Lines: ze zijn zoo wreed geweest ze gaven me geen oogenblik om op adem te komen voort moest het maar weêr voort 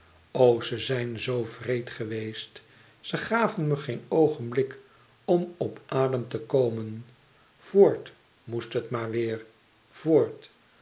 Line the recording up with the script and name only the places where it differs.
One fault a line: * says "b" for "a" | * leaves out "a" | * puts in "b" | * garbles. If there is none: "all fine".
all fine